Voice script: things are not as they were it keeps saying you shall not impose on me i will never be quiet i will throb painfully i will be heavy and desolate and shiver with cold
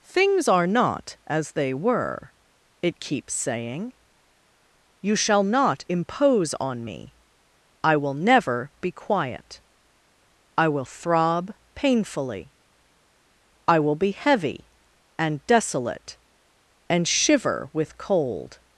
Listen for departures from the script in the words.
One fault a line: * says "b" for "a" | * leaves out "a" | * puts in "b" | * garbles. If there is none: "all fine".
all fine